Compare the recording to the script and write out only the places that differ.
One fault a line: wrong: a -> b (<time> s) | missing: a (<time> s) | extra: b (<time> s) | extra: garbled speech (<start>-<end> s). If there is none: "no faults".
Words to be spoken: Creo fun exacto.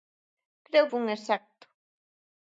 no faults